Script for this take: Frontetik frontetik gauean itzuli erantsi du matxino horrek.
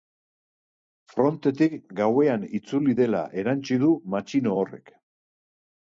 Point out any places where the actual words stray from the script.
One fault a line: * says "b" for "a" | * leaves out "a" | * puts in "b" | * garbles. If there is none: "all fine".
* leaves out "frontetik"
* puts in "dela"